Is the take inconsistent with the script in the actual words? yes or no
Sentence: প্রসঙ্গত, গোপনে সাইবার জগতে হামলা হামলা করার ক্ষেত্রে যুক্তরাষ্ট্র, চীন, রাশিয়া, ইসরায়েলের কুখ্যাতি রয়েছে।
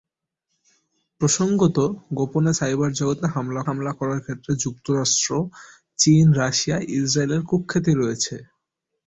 no